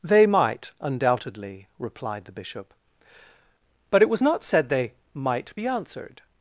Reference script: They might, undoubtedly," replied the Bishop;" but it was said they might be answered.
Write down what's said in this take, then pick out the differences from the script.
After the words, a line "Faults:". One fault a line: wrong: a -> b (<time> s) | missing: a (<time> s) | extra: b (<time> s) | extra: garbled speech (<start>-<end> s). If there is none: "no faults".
They might, undoubtedly," replied the Bishop;" but it was not said they might be answered.
Faults:
extra: not (4.2 s)